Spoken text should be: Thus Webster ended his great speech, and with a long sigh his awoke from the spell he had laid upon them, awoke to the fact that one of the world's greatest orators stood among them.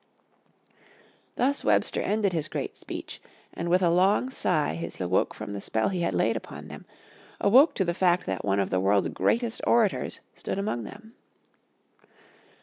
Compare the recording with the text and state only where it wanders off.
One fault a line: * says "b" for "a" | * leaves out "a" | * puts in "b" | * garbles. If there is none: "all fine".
all fine